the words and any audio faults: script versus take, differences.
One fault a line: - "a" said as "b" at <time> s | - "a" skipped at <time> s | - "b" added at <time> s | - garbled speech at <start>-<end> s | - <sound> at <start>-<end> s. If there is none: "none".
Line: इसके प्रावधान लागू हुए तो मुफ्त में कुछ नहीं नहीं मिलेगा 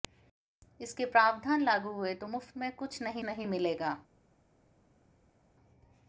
none